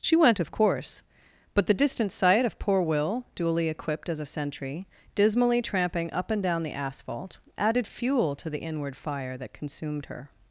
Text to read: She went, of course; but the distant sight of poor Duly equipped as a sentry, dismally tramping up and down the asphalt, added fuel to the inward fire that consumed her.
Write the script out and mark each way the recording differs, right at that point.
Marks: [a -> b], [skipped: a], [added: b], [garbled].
She went, of course; but the distant sight of poor [added: Will] Duly equipped as a sentry, dismally tramping up and down the asphalt, added fuel to the inward fire that consumed her.